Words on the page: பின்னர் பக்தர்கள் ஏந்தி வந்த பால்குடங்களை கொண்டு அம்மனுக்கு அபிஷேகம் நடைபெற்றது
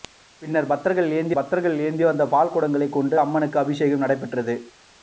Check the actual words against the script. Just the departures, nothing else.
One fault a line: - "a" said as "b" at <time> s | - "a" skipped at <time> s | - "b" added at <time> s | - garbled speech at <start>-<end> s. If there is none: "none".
- "பக்தர்கள் ஏந்தி" added at 1.4 s